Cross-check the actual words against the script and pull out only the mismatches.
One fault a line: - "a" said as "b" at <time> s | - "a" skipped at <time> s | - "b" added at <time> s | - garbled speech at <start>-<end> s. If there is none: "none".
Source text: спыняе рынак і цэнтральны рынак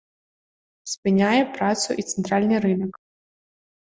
- "рынак" said as "працу" at 1.6 s